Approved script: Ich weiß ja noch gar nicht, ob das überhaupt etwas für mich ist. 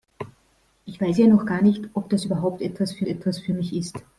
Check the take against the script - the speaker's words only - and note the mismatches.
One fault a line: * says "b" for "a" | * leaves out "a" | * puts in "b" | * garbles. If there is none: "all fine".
* puts in "etwas für"